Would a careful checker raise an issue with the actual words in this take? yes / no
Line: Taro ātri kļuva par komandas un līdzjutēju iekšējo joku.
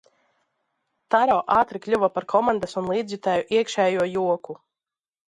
no